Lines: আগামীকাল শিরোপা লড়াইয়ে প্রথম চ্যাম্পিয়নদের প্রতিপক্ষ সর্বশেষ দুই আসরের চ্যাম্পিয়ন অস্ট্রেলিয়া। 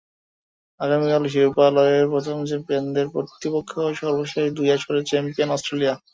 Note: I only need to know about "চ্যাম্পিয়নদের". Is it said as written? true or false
true